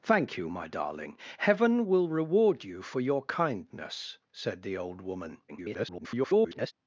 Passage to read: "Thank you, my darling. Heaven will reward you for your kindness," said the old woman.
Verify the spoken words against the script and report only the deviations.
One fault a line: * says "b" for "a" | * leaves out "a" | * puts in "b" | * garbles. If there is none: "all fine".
* garbles